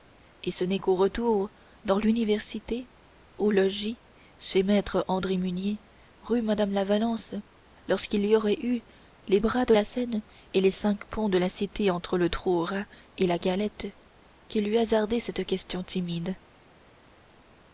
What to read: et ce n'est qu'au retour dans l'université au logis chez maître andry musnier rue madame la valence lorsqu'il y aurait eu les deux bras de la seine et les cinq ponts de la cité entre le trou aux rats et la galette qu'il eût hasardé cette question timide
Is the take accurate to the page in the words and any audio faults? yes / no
no